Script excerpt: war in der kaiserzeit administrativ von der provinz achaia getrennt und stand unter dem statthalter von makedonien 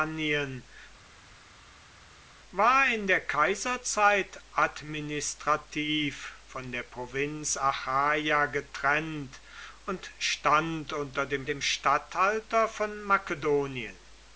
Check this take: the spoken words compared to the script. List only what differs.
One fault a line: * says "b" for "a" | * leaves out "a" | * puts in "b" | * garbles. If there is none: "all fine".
* puts in "dem"